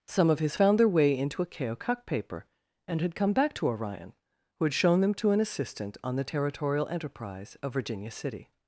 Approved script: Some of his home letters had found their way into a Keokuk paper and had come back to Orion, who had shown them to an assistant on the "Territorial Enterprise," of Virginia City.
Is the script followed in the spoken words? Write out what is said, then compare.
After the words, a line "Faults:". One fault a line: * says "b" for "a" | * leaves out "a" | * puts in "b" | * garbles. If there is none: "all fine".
Some of his found their way into a Keokuk paper and had come back to Orion, who had shown them to an assistant on the "Territorial Enterprise," of Virginia City.
Faults:
* leaves out "home letters had"